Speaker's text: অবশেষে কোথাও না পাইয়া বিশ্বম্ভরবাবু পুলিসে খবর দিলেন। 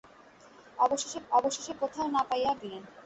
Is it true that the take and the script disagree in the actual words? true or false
true